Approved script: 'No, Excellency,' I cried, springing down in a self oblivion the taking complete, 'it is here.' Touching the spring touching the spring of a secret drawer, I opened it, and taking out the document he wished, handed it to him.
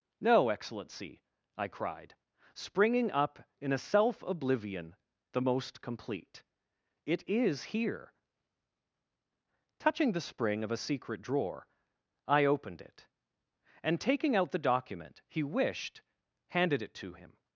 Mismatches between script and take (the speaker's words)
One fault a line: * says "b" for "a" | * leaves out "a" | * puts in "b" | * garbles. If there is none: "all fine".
* says "up" for "down"
* says "most" for "taking"
* leaves out "touching the spring"